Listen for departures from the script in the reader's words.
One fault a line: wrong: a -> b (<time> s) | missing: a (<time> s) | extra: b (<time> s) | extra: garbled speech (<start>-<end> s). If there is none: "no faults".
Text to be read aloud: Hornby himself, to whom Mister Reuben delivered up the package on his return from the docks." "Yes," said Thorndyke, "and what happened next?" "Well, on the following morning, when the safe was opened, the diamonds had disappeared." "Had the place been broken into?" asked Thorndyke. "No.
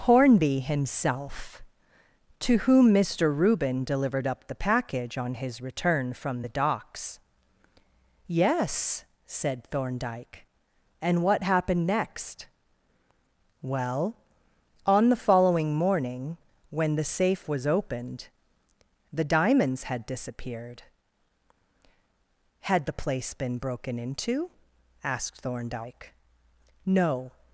no faults